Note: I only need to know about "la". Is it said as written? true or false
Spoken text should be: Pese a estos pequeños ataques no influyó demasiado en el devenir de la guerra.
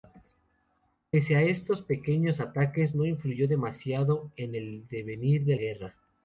false